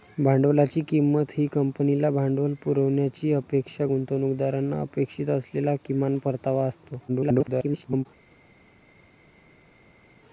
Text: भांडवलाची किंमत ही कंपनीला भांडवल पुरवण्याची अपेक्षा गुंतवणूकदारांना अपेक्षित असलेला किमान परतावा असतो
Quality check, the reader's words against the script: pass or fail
fail